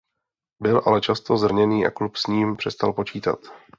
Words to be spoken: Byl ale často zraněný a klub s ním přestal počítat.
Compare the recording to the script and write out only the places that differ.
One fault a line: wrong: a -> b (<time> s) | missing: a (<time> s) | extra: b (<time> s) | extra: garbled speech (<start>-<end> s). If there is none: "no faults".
no faults